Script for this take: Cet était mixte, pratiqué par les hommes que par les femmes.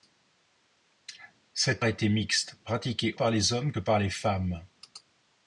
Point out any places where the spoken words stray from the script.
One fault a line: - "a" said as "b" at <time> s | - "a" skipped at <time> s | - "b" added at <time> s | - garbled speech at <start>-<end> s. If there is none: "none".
none